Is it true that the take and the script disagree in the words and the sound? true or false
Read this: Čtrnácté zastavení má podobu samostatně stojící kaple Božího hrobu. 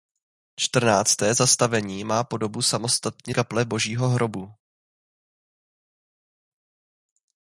true